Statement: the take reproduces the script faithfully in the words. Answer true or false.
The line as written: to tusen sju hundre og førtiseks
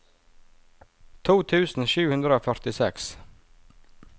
true